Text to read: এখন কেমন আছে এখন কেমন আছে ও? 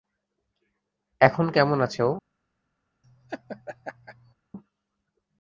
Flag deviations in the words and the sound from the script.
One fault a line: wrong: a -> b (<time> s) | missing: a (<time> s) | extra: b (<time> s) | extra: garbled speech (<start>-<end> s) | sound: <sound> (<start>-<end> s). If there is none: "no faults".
missing: এখন কেমন আছে (2.0 s)
sound: laugh (3.0-4.3 s)